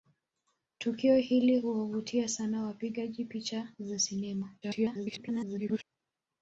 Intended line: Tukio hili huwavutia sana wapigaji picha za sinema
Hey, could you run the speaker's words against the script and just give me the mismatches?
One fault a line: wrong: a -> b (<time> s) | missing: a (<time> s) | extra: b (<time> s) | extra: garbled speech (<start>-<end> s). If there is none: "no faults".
extra: garbled speech (4.6-5.8 s)